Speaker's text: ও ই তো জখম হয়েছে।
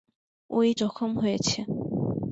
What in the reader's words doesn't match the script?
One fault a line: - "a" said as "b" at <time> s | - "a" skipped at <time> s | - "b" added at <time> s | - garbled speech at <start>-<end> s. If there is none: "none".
- "তো" skipped at 0.7 s